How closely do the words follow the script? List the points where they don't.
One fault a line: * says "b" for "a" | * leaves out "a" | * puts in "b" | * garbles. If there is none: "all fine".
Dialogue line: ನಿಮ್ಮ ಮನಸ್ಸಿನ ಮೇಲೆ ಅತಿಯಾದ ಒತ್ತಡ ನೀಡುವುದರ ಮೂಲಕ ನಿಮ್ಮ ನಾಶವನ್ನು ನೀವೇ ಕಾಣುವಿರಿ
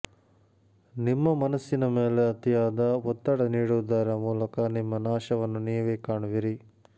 all fine